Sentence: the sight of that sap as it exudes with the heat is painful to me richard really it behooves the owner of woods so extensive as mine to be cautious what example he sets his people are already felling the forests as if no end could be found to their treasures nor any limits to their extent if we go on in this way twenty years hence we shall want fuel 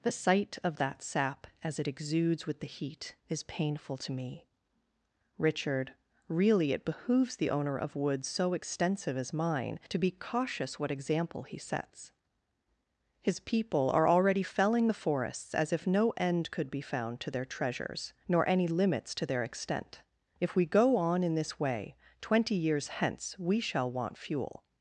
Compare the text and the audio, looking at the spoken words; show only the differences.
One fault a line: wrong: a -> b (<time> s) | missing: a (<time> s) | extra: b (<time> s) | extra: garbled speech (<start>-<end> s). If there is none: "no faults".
no faults